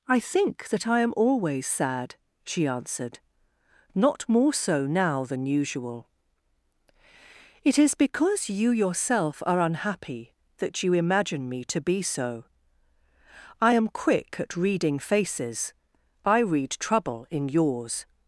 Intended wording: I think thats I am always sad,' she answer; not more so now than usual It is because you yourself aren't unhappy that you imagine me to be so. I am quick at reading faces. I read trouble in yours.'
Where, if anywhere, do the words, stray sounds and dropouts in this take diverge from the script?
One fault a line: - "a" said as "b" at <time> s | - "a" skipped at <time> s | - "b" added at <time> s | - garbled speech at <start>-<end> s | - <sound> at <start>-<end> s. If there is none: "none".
- "thats" said as "that" at 0.7 s
- "answer" said as "answered" at 2.7 s
- "aren't" said as "are" at 9.4 s